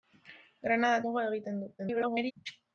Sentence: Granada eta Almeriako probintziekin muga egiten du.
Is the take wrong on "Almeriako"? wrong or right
wrong